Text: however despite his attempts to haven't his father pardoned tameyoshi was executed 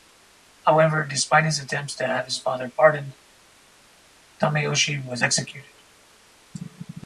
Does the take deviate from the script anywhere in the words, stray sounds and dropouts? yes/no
yes